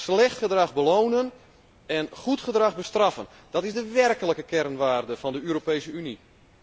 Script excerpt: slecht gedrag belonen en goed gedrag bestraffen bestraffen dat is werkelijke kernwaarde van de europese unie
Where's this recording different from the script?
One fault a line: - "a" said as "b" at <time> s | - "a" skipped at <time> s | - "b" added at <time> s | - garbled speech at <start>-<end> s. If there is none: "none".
- "bestraffen" skipped at 3.3 s
- "de" added at 3.7 s